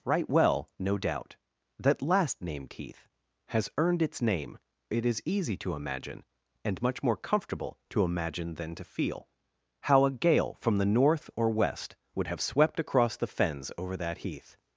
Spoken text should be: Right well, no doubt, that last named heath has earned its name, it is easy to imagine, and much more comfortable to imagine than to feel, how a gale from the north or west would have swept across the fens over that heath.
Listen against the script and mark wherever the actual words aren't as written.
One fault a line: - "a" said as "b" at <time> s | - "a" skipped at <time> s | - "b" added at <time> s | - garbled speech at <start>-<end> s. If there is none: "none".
none